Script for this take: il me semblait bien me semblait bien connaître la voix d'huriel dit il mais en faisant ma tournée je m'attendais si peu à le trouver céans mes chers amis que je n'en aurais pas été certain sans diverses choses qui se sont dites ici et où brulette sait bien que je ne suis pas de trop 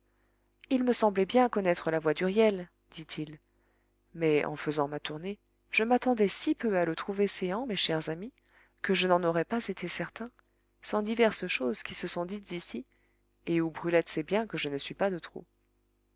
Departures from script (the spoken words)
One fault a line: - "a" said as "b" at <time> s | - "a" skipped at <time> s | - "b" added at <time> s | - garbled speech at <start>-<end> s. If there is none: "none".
- "me semblait bien" skipped at 1.5 s